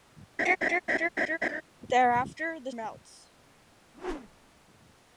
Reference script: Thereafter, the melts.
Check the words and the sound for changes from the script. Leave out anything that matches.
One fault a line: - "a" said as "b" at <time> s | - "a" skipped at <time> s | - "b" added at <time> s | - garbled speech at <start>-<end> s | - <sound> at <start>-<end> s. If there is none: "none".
- laugh at 0.4-1.6 s
- whoosh at 3.9-4.5 s